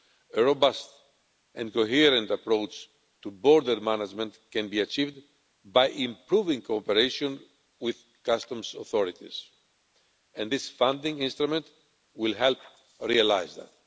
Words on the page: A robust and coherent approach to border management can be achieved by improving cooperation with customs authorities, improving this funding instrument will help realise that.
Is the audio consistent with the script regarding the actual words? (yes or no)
no